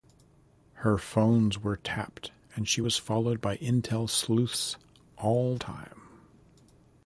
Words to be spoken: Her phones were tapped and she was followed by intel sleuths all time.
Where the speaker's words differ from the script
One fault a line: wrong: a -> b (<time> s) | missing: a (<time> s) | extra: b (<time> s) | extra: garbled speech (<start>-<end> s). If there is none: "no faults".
no faults